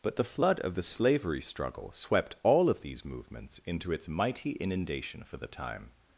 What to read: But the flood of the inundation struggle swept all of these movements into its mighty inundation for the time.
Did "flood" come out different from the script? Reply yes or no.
no